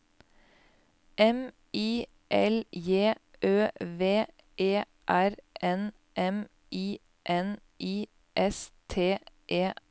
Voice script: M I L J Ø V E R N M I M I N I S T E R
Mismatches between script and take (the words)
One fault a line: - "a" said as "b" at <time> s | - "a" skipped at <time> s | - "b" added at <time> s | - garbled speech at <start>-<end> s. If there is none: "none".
- "M I" skipped at 7.0 s